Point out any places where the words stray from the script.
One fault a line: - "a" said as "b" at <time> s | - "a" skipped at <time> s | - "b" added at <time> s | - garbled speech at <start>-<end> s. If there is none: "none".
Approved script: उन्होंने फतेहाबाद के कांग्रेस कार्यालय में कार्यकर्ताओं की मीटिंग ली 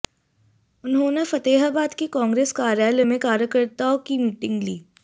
none